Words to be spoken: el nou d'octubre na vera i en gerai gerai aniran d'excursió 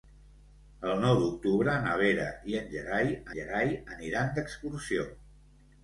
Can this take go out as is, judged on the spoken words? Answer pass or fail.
pass